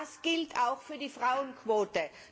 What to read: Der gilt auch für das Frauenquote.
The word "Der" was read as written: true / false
false